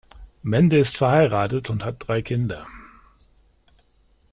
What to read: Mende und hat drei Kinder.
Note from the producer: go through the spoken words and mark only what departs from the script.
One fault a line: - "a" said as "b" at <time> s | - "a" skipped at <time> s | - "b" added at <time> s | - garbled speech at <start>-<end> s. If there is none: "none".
- "ist verheiratet" added at 0.8 s